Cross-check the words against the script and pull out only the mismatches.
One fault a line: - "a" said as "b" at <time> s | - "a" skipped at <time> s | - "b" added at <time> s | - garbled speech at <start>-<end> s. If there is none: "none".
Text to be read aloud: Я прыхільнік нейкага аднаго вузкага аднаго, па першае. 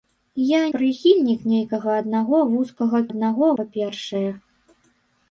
none